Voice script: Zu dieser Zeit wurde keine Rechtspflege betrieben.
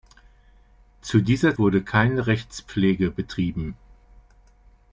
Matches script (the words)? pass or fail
fail